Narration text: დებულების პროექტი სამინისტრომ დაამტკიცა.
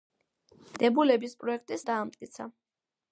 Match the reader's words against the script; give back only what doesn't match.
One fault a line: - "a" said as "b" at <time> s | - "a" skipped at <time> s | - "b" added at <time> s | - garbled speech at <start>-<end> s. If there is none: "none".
- "სამინისტრომ" skipped at 1.8 s